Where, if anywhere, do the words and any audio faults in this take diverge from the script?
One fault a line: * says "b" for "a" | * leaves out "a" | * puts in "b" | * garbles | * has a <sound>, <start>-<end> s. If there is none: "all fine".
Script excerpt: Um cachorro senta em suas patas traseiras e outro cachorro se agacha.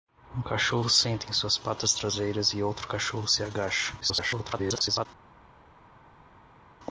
* garbles